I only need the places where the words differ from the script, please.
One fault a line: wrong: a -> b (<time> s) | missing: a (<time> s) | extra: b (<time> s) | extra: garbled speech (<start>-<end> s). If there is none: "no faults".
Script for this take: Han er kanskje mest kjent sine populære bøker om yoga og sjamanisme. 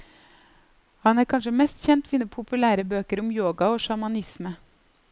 no faults